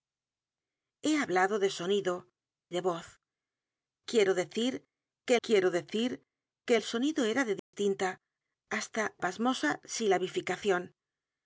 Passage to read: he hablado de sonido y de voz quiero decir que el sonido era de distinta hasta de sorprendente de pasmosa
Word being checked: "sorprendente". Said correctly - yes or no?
no